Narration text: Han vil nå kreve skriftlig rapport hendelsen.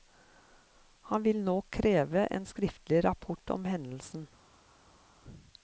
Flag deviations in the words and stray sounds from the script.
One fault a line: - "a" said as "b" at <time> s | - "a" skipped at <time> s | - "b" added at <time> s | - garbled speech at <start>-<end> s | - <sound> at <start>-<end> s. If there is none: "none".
- "en" added at 2.2 s
- "om" added at 3.5 s